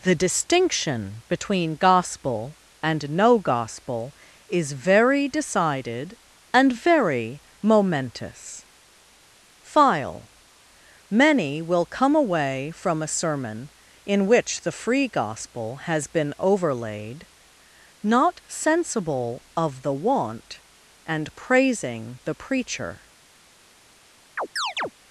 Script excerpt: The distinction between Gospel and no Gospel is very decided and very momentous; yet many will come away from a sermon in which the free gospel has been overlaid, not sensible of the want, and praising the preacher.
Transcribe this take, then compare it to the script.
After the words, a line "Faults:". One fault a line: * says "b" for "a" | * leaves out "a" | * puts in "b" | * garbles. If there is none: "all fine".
The distinction between Gospel and no Gospel is very decided and very momentous; file many will come away from a sermon in which the free gospel has been overlaid, not sensible of the want, and praising the preacher.
Faults:
* says "file" for "yet"